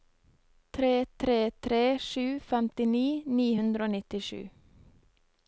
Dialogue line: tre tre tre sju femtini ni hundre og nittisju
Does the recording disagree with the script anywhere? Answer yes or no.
no